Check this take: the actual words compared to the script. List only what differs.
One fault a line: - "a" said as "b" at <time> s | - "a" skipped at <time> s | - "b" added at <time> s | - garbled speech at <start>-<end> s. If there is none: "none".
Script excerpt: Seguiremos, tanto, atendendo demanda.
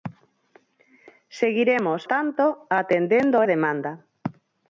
none